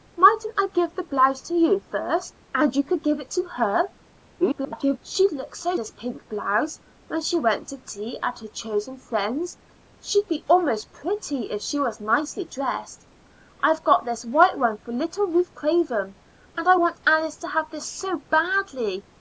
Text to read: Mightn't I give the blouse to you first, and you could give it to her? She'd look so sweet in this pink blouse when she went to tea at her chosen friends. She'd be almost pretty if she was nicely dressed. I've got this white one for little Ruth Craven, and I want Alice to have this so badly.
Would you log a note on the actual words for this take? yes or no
yes